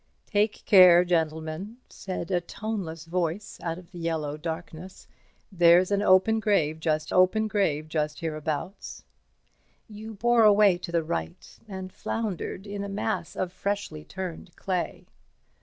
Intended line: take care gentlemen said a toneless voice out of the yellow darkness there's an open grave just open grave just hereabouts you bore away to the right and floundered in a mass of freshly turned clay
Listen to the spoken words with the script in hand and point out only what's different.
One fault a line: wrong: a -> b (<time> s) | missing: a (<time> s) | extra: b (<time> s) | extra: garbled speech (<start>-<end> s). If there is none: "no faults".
no faults